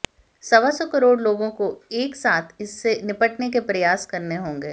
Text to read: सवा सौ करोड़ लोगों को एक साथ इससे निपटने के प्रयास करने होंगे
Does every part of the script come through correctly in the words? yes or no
yes